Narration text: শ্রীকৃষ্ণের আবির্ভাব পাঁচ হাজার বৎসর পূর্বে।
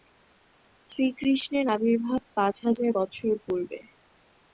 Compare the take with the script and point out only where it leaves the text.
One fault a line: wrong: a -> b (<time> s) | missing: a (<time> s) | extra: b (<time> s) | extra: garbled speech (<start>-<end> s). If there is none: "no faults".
no faults